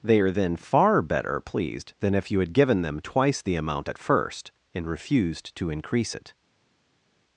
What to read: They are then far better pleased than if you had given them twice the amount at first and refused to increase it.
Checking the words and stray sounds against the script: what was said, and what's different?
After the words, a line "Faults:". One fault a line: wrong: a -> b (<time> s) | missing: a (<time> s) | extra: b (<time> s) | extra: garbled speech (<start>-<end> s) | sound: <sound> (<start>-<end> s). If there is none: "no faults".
They are then far better pleased than if you had given them twice the amount at first and refused to increase it.
Faults:
no faults